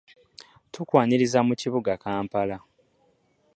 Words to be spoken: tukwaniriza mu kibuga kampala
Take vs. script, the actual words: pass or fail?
pass